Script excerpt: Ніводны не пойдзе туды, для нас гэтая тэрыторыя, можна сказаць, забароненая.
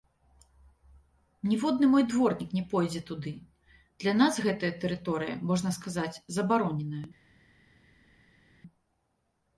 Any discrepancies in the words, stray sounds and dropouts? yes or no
yes